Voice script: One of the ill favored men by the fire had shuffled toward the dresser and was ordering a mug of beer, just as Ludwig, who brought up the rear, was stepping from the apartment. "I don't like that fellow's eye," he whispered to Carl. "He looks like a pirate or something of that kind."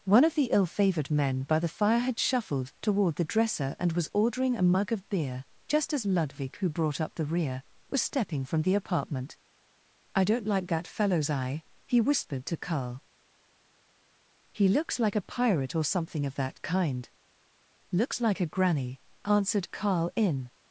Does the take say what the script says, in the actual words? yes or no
no